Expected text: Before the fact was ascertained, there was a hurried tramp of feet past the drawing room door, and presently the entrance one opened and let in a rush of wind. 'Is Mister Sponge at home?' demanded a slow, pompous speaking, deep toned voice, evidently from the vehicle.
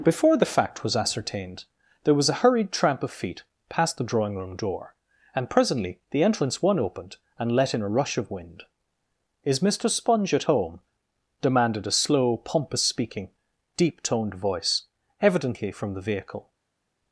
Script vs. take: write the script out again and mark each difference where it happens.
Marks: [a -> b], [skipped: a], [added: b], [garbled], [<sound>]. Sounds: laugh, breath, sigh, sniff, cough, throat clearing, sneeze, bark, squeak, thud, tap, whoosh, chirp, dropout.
Before the fact was ascertained, there was a hurried tramp of feet past the drawing room door, and presently the entrance one opened and let in a rush of wind. 'Is Mister Sponge at home?' demanded a slow, pompous speaking, deep toned voice, evidently from the vehicle.